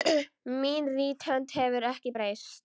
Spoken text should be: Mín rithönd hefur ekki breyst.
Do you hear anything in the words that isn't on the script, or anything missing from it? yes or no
no